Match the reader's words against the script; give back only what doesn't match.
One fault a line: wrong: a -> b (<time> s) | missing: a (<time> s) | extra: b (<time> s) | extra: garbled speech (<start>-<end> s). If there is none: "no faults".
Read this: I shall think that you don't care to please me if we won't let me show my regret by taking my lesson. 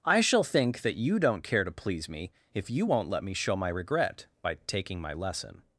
wrong: we -> you (2.7 s)